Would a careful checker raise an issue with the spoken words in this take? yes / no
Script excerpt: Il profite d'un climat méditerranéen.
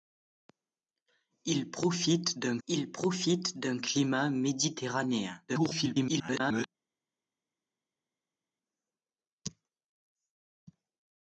yes